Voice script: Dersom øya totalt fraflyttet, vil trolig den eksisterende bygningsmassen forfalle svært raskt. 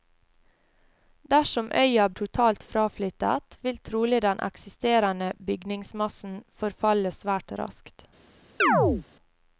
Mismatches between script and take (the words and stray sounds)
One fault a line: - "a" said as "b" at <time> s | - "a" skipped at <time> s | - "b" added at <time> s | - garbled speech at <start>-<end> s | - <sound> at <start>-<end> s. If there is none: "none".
- chirp at 8.6-9.1 s